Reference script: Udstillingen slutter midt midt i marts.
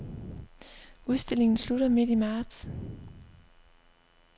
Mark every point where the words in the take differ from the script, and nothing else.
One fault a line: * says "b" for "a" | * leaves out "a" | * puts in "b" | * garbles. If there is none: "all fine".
* leaves out "midt"